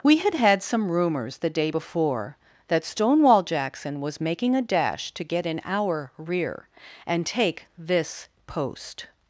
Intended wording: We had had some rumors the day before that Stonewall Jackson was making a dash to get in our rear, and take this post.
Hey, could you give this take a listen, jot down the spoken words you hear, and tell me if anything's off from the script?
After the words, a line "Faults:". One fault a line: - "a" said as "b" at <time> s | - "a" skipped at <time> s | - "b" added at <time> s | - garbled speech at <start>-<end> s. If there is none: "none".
We had had some rumors the day before that Stonewall Jackson was making a dash to get in our rear, and take this post.
Faults:
none